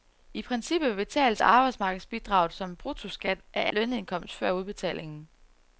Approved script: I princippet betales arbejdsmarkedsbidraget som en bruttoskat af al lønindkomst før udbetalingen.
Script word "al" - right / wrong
wrong